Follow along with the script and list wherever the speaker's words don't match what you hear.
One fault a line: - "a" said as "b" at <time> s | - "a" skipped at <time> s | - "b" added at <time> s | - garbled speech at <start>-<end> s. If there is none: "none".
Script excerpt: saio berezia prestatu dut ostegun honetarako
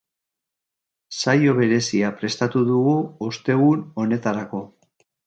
- "dut" said as "dugu" at 2.7 s